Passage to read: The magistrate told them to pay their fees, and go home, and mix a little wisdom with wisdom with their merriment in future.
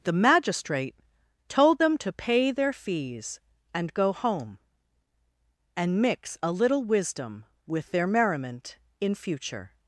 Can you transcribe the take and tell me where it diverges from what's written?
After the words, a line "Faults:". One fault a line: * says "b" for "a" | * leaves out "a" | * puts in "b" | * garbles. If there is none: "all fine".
The magistrate told them to pay their fees, and go home, and mix a little wisdom with their merriment in future.
Faults:
* leaves out "wisdom with"